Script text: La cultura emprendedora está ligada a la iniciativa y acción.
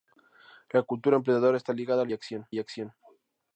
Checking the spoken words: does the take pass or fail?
fail